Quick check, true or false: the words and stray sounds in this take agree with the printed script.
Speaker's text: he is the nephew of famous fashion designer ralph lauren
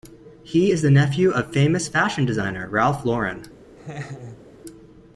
false